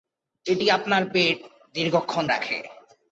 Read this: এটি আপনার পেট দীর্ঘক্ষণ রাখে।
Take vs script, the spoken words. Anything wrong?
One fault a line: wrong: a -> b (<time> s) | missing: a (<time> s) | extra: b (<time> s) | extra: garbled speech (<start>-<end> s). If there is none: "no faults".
no faults